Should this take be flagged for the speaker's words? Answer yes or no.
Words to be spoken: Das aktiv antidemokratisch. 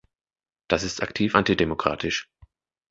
yes